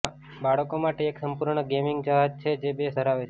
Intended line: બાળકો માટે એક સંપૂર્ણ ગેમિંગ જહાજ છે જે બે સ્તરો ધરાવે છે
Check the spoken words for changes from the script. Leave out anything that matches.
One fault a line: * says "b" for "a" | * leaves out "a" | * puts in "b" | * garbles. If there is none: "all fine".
* leaves out "સ્તરો"